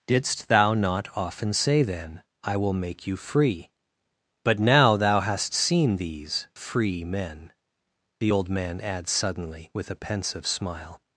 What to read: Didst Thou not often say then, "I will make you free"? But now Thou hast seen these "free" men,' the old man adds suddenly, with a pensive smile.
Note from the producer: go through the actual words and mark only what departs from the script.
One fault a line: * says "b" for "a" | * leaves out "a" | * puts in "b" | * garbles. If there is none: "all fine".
all fine